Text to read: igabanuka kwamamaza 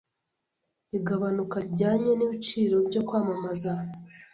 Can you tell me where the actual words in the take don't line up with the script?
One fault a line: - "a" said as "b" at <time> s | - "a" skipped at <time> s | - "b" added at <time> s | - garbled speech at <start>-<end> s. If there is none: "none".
- "rijyanye n'ibiciro byo" added at 1.6 s